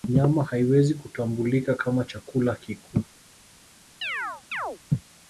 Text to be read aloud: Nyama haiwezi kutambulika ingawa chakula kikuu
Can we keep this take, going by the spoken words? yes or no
no